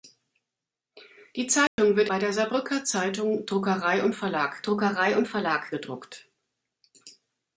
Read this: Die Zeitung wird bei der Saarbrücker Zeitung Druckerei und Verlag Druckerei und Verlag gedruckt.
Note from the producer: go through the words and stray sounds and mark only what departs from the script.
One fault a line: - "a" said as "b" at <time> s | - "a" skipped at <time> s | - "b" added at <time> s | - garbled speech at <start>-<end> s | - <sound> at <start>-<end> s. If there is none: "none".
- dropout at 1.7-1.8 s